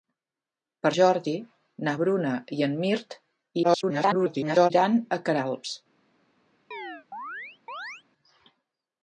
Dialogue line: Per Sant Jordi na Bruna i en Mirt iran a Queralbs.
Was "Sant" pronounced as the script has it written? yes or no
no